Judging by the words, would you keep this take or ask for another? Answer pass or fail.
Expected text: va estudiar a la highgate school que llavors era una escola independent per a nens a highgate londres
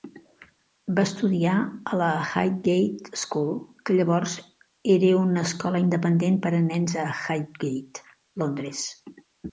pass